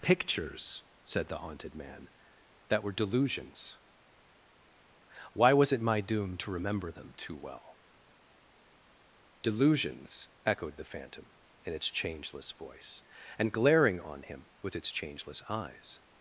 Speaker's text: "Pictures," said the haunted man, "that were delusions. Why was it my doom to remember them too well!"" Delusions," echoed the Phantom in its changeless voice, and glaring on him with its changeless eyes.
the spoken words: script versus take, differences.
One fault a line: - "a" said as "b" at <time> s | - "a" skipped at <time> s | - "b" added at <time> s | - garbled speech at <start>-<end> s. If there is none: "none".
none